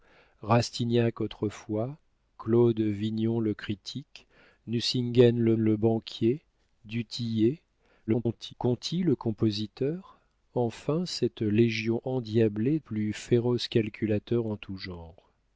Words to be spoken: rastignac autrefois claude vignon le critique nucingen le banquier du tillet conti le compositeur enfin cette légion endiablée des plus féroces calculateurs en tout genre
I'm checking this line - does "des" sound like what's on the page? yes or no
no